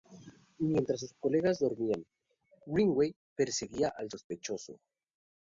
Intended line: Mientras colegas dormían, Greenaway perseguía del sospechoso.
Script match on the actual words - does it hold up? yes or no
no